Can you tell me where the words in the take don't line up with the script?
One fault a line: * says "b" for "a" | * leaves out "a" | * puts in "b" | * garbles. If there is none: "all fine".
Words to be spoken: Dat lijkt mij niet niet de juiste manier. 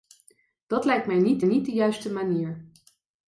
all fine